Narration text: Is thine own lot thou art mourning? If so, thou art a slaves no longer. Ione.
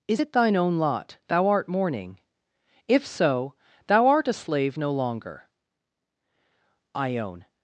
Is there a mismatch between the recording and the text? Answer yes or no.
yes